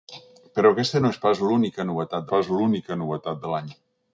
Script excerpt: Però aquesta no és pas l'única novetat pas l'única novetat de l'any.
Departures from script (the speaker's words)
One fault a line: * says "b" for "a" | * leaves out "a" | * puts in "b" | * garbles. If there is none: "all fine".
all fine